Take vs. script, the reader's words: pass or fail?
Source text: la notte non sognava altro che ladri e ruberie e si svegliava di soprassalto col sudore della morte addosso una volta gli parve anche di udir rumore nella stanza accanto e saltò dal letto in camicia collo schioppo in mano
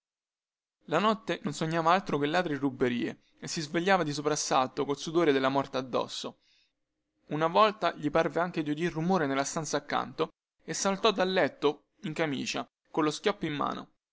pass